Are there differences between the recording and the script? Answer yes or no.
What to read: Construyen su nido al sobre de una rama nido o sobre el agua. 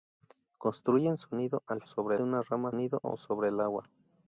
no